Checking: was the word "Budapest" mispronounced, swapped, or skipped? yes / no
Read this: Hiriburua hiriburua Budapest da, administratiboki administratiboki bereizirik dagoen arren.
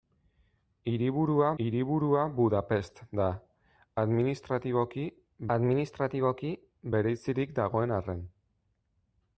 no